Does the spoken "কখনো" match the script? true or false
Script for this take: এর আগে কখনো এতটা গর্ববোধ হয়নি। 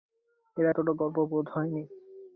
false